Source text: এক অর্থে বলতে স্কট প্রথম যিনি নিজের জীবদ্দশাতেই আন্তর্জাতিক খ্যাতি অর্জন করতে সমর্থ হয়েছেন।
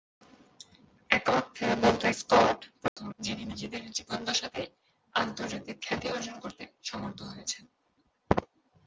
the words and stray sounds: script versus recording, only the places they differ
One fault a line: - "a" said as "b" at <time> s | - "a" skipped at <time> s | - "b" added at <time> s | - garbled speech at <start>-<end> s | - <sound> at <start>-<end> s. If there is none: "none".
- dropout at 2.9-3.0 s